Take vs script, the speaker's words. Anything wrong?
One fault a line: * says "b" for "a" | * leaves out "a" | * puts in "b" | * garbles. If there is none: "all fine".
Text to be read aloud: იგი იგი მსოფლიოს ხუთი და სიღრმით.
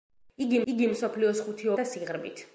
all fine